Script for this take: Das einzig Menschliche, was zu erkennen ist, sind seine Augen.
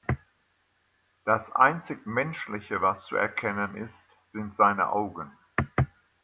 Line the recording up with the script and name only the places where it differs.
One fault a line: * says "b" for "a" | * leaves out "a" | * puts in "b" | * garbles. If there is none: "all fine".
all fine